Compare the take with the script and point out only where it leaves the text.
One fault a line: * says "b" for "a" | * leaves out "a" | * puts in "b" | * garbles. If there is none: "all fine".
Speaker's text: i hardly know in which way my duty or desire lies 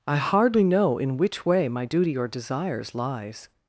* says "desires" for "desire"